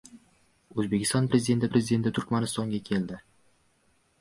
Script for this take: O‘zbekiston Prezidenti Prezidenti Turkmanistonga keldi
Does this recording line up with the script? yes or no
yes